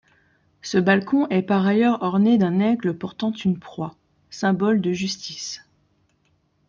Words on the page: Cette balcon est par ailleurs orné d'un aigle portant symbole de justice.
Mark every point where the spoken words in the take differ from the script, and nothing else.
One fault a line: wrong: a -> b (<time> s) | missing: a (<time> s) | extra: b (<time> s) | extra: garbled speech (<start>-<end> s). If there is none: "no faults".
wrong: Cette -> Ce (0.6 s)
extra: une proie (3.3 s)